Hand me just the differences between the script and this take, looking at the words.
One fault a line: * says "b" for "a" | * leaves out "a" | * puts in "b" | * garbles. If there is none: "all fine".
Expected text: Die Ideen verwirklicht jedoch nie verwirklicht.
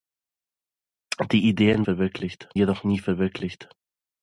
all fine